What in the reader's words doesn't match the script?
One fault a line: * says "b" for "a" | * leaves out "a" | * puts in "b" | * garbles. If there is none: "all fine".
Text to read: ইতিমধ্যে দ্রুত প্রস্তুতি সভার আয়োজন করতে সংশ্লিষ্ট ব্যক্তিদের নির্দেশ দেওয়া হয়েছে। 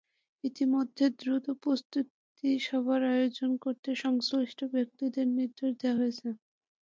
all fine